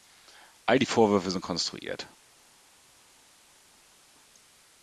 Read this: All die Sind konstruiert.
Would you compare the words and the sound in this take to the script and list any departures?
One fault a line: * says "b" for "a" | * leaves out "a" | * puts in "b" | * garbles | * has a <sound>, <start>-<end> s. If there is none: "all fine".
* puts in "Vorwürfe"